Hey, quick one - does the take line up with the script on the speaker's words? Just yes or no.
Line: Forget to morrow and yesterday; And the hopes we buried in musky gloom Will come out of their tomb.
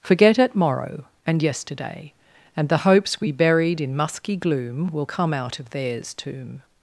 no